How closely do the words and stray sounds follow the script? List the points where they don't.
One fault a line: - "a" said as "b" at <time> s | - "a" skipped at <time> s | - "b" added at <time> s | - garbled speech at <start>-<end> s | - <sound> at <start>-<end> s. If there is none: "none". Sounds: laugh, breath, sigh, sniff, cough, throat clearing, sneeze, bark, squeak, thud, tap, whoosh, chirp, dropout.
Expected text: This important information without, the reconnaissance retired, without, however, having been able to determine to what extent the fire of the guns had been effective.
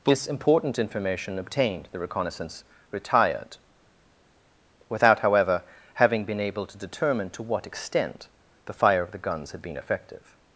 - "without" said as "obtained" at 1.4 s